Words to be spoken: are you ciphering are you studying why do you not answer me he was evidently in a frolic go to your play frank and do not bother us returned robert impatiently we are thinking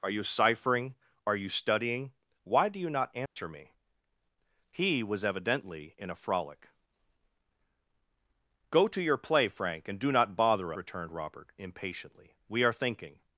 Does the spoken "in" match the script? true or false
true